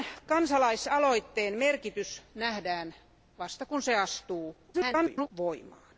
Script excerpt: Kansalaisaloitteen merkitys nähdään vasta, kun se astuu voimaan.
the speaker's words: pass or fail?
fail